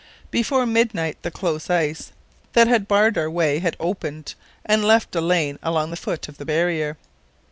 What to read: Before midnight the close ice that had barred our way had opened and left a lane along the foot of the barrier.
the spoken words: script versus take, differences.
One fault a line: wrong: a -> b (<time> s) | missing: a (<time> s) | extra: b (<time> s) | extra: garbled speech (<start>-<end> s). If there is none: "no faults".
no faults